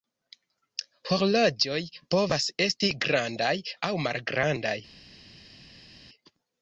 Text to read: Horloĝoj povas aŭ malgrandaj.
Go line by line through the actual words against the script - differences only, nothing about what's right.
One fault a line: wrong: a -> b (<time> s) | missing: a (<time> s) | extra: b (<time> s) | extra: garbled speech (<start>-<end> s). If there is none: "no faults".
extra: esti grandaj (2.6 s)